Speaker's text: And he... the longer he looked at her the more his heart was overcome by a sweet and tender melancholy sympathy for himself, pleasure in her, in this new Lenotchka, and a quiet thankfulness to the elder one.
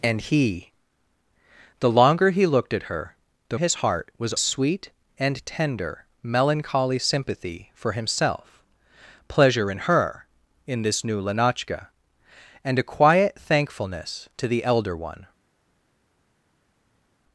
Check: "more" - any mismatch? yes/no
yes